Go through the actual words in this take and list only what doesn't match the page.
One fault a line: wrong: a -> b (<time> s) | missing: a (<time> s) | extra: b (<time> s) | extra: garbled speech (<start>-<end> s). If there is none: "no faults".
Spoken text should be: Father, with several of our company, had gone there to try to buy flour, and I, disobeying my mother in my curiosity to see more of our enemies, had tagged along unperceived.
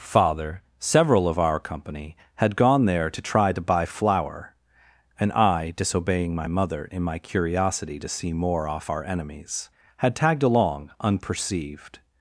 missing: with (0.6 s)
wrong: of -> off (8.7 s)